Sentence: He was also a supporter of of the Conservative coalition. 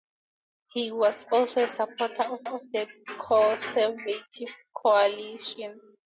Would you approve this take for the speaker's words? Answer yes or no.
yes